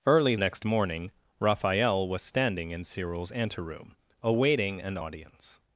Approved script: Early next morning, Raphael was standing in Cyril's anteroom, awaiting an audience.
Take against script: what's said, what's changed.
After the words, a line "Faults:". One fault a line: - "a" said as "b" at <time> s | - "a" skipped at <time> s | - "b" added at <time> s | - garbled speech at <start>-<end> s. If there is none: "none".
Early next morning, Raphael was standing in Cyril's anteroom, awaiting an audience.
Faults:
none